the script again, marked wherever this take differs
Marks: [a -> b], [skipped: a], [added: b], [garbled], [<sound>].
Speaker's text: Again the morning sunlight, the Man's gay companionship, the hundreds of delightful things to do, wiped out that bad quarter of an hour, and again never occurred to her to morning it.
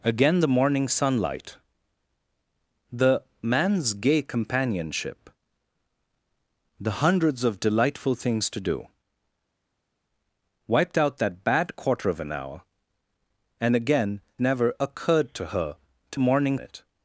Again the morning sunlight, the Man's gay companionship, the hundreds of delightful things to do, wiped out that bad quarter of an hour, and again never occurred to her to morning it.